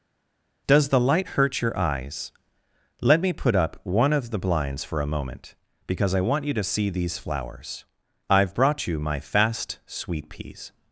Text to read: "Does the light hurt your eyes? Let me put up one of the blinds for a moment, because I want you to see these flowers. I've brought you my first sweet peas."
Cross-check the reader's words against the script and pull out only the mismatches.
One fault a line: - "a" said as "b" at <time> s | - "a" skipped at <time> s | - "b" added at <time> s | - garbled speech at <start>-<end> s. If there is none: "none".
- "first" said as "fast" at 9.2 s